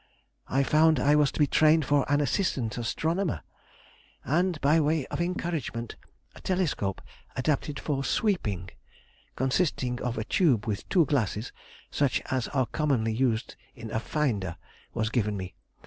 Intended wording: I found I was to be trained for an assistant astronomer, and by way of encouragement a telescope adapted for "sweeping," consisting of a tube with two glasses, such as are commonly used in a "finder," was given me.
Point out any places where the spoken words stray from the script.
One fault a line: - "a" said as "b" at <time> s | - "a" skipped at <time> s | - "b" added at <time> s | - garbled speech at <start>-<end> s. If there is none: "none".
none